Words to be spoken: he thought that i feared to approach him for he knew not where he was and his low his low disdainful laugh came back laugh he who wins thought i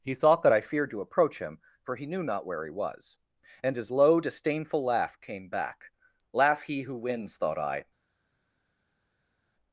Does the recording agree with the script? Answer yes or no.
no